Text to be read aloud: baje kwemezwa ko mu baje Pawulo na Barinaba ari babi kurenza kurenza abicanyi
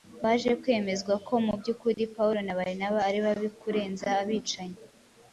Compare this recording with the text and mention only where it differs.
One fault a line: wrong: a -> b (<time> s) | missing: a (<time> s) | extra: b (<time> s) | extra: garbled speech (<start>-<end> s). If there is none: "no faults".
wrong: baje -> by'ukuri (1.6 s)
missing: kurenza (4.1 s)